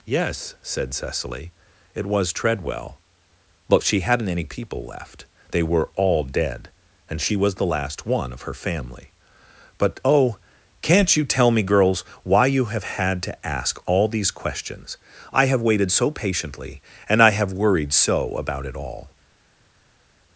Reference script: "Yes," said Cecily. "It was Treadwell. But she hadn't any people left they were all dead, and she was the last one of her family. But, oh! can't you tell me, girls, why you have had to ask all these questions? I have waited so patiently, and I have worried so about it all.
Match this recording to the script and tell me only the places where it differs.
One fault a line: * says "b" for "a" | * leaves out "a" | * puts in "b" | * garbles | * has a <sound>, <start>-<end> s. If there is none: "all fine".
all fine